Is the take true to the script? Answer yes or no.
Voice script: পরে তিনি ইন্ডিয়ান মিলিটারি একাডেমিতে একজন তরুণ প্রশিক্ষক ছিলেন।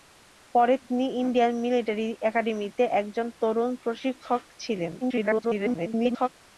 no